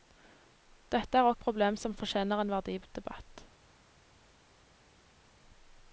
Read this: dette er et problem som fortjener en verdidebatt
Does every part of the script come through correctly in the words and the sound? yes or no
yes